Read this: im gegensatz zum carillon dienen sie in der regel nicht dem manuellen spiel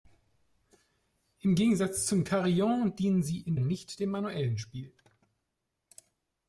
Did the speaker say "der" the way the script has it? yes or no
no